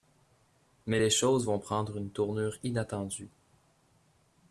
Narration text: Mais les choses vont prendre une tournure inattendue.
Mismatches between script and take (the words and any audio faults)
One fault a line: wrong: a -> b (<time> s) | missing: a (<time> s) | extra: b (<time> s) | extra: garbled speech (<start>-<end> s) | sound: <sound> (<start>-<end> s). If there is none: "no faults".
no faults